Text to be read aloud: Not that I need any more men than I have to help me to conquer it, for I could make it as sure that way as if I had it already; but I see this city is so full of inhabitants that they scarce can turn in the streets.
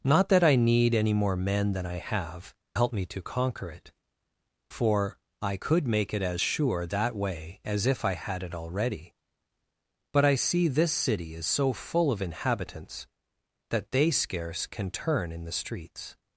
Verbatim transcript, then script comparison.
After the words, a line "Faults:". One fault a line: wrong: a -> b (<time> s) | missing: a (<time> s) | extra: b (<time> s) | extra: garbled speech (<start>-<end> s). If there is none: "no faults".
Not that I need any more men than I have help me to conquer it, for I could make it as sure that way as if I had it already; but I see this city is so full of inhabitants that they scarce can turn in the streets.
Faults:
missing: to (2.5 s)